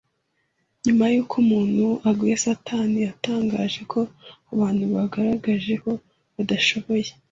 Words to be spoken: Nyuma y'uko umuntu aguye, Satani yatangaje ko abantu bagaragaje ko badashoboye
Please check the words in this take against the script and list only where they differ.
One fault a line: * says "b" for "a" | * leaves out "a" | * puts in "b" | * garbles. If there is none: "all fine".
all fine